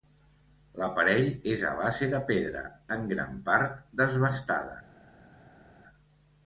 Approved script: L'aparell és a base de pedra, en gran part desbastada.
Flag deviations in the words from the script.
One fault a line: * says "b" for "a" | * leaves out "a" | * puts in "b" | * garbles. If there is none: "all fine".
all fine